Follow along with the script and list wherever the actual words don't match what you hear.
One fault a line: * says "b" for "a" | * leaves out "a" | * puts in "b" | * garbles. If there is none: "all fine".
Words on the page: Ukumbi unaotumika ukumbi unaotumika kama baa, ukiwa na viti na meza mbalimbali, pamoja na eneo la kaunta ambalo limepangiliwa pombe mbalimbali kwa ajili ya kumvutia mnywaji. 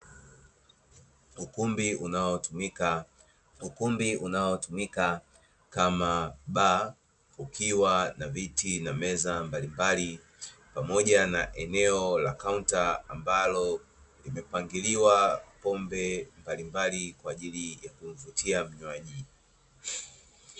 all fine